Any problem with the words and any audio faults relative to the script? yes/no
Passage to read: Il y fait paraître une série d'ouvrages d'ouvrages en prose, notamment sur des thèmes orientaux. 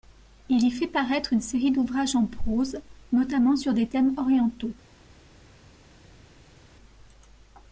yes